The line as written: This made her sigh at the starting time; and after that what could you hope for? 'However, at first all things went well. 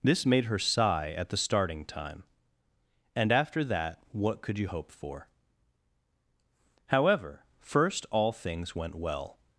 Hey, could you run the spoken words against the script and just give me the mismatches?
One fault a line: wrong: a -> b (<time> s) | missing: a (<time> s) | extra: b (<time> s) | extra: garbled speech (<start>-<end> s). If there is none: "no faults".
missing: at (7.4 s)